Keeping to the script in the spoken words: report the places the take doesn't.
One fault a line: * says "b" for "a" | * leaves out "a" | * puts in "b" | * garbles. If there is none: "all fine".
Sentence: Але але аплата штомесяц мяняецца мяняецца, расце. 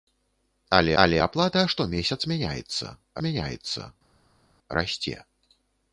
all fine